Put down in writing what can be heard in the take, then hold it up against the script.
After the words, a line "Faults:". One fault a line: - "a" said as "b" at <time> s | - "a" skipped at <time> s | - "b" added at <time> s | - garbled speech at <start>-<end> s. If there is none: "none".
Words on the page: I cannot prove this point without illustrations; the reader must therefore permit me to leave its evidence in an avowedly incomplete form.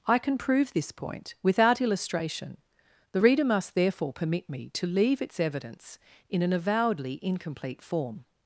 I can prove this point without illustration; the reader must therefore permit me to leave its evidence in an avowedly incomplete form.
Faults:
- "cannot" said as "can" at 0.2 s
- "illustrations" said as "illustration" at 1.8 s